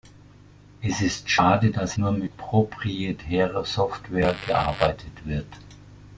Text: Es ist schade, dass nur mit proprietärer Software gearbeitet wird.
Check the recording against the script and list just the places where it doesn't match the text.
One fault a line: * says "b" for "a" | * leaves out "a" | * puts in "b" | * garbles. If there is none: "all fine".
all fine